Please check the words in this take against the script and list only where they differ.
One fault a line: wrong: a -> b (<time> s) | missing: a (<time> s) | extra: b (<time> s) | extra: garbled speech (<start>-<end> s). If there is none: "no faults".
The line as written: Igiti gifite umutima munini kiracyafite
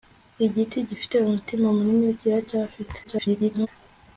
extra: garbled speech (3.0-3.7 s)